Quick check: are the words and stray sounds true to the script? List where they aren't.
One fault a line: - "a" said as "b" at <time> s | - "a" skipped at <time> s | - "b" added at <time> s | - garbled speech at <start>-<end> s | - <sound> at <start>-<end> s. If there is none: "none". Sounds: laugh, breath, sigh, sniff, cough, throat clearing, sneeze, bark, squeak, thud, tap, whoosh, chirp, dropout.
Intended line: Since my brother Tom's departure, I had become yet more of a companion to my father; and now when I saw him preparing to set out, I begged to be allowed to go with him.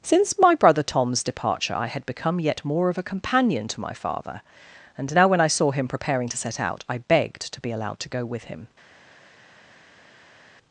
none